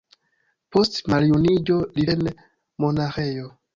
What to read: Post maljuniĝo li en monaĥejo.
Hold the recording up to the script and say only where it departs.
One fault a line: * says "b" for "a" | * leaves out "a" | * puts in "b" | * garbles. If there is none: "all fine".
all fine